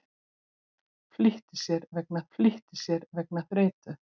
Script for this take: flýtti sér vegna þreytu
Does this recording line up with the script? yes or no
no